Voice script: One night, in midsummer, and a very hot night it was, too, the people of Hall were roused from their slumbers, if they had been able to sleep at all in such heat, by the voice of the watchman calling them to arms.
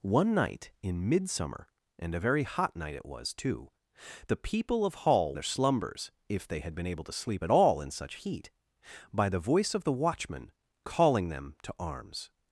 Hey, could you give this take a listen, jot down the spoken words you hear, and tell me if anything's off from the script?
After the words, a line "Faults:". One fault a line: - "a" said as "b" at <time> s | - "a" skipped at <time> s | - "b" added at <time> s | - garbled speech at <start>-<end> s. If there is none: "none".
One night, in midsummer, and a very hot night it was, too, the people of Hall their slumbers, if they had been able to sleep at all in such heat, by the voice of the watchman calling them to arms.
Faults:
- "were roused from" skipped at 5.3 s